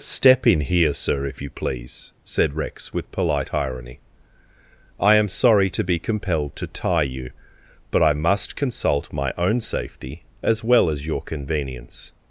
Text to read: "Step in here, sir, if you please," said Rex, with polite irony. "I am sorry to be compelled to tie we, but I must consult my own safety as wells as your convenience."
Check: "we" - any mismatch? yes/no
yes